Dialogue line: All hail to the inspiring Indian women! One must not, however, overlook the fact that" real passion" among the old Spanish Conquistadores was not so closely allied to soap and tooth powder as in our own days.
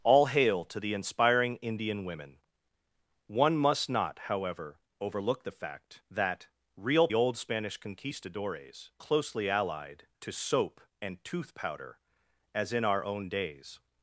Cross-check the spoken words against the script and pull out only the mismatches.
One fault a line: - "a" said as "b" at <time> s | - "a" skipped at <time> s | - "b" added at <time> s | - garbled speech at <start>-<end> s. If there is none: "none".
- "passion among the" skipped at 7.1 s
- "was not so" skipped at 8.9 s